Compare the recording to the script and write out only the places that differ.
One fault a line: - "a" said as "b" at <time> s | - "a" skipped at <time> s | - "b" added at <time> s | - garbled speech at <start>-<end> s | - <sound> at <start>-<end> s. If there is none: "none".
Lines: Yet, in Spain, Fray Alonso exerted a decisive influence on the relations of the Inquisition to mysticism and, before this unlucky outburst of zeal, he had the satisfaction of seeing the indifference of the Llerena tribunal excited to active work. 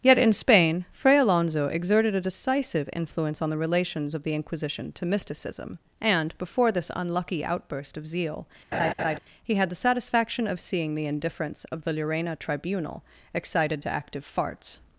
- laugh at 8.7-9.2 s
- "work" said as "farts" at 14.3 s